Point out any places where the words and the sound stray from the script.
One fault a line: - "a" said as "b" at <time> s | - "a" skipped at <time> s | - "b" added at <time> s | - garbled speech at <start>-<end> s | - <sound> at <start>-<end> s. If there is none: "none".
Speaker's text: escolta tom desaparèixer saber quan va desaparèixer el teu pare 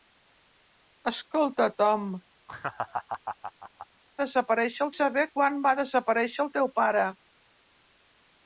- laugh at 2.5-3.9 s